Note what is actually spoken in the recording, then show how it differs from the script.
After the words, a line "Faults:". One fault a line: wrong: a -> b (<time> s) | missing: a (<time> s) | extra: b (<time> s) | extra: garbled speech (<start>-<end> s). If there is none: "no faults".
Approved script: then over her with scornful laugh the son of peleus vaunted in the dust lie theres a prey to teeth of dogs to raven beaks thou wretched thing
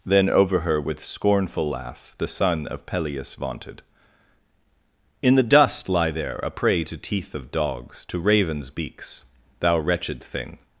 then over her with scornful laugh the son of peleus vaunted in the dust lie there a prey to teeth of dogs to ravens beaks thou wretched thing
Faults:
wrong: theres -> there (6.1 s)
wrong: raven -> ravens (8.2 s)